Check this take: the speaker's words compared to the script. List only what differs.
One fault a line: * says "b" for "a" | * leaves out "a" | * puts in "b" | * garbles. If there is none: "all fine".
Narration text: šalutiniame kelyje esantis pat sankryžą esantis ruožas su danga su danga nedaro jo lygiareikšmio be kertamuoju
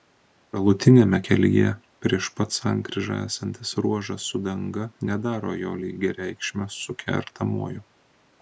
* says "prieš" for "esantis"
* leaves out "su danga"
* says "su" for "be"